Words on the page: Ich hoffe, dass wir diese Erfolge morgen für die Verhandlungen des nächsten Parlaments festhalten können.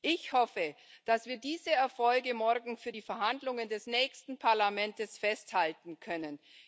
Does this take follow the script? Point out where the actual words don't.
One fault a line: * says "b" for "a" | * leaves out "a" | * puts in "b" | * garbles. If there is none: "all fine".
all fine